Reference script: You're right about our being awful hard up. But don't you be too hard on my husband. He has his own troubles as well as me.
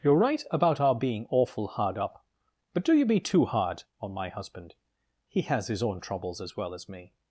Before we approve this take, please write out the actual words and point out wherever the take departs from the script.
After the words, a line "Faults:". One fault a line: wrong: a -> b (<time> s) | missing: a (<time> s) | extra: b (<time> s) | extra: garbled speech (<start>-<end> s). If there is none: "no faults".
You're right about our being awful hard up. But do you be too hard on my husband. He has his own troubles as well as me.
Faults:
wrong: don't -> do (2.8 s)